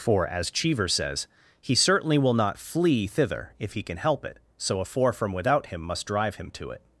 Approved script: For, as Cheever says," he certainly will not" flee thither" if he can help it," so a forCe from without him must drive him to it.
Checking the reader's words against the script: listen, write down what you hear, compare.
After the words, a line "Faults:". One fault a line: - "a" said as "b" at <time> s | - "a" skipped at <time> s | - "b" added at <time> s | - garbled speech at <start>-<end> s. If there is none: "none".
For, as Cheever says," he certainly will not" flee thither" if he can help it," so a four from without him must drive him to it.
Faults:
- "forCe" said as "four" at 4.8 s